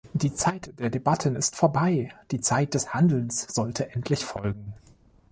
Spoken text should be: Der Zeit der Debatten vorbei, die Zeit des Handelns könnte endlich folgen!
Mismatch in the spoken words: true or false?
true